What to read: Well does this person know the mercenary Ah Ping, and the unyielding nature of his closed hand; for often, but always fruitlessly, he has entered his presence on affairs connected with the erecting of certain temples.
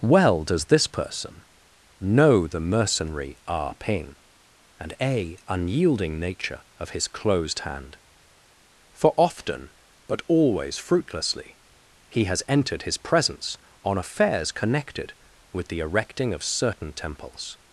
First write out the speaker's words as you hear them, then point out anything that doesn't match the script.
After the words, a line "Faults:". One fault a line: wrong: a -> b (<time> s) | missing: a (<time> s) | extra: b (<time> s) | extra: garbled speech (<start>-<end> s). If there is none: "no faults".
Well does this person know the mercenary Ah Ping, and a unyielding nature of his closed hand; for often, but always fruitlessly, he has entered his presence on affairs connected with the erecting of certain temples.
Faults:
wrong: the -> a (5.0 s)